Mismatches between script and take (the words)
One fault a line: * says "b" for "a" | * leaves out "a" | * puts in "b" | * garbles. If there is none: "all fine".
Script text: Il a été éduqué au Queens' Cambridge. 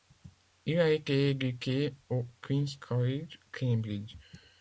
* puts in "College"